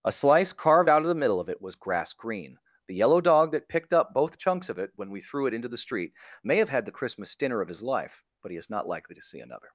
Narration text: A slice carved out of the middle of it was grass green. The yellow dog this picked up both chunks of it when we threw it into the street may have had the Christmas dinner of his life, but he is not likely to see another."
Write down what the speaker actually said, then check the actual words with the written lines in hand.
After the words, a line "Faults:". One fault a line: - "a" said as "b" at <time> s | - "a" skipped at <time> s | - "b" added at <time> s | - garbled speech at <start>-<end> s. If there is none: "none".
A slice carved out of the middle of it was grass green. The yellow dog that picked up both chunks of it when we threw it into the street may have had the Christmas dinner of his life, but he is not likely to see another."
Faults:
- "this" said as "that" at 3.5 s